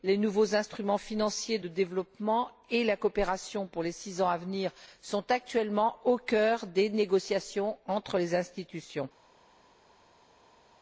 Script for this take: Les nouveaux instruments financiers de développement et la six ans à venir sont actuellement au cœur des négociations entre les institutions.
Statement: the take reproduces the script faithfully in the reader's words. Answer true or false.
false